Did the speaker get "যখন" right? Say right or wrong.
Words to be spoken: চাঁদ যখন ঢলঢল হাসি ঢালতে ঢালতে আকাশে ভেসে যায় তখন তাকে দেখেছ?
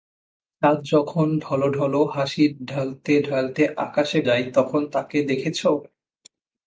right